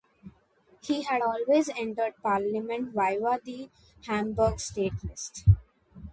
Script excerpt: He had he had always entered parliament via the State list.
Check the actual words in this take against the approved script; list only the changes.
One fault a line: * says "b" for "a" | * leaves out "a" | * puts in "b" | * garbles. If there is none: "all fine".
* leaves out "he had"
* puts in "Hamburg"